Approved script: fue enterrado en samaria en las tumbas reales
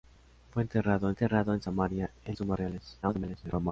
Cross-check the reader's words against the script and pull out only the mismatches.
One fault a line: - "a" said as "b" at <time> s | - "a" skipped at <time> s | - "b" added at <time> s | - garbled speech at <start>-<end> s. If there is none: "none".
- "enterrado" added at 1.1 s
- "las" skipped at 2.4 s
- garbled speech at 3.0-3.7 s